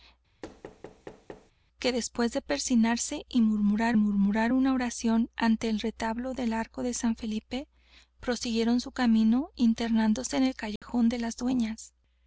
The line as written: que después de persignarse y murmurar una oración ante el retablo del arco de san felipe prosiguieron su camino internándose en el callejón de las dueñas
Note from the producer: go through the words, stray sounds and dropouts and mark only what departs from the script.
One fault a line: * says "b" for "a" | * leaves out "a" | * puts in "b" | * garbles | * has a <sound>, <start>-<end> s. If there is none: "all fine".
* has a thud, 0.4-1.5 s
* puts in "murmurar"
* has a dropout, 10.8-10.8 s